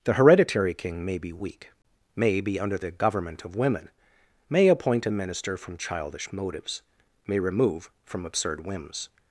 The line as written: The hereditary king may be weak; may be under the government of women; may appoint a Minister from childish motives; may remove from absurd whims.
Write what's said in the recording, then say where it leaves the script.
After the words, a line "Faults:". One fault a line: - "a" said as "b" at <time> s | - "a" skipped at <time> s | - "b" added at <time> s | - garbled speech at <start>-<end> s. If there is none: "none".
The hereditary king may be weak; may be under the government of women; may appoint a Minister from childish motives; may remove from absurd whims.
Faults:
none